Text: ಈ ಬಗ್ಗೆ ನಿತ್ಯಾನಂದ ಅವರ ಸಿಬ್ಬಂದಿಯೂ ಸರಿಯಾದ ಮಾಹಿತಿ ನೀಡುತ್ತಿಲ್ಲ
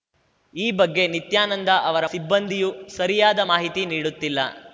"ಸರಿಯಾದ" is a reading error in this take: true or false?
false